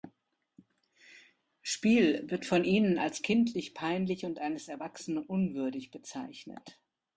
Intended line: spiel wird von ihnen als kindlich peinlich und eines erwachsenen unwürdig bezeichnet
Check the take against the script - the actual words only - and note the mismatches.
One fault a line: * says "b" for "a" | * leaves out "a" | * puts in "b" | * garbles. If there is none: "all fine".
all fine